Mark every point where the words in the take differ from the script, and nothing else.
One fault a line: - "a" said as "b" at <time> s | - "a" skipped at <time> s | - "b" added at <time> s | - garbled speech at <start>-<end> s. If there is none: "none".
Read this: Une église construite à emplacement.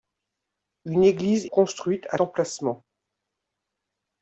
none